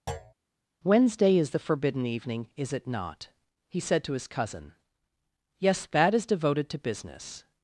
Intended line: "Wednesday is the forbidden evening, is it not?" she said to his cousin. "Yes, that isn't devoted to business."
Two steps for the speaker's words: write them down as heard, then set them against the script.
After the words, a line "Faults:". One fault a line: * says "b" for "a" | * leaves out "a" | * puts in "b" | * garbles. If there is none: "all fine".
"Wednesday is the forbidden evening, is it not?" he said to his cousin. "Yes, that is devoted to business."
Faults:
* says "he" for "she"
* says "is" for "isn't"